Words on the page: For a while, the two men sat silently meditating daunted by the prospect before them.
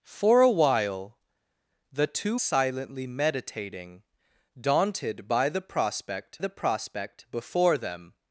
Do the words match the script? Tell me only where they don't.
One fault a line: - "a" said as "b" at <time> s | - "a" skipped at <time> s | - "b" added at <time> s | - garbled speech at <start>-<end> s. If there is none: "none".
- "men sat" skipped at 2.4 s
- "the prospect" added at 6.4 s